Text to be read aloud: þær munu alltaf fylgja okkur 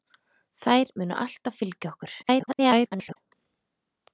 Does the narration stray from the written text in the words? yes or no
yes